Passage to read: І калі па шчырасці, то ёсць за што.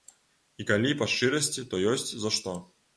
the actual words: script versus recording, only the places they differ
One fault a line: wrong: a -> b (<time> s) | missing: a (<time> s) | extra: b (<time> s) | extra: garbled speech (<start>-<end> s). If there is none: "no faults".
no faults